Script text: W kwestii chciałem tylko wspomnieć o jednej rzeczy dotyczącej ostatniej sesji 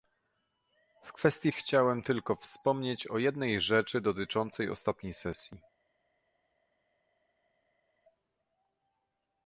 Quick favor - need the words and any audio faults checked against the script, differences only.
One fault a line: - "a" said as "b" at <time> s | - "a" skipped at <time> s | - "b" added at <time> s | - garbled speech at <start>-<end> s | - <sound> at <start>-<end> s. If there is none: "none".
none